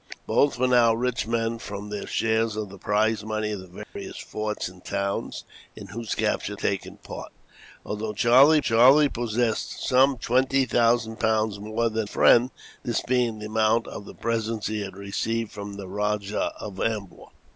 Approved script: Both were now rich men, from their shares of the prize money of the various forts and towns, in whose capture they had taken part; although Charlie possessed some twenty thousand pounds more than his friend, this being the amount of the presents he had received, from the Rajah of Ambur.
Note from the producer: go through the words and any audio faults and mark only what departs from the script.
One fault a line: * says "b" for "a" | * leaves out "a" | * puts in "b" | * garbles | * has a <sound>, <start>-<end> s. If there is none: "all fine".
* has a dropout, 3.8-4.0 s
* leaves out "they had"
* puts in "Charlie"
* leaves out "his"